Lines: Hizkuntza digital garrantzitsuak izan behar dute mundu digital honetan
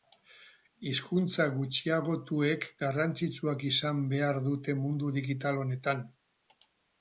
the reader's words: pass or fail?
fail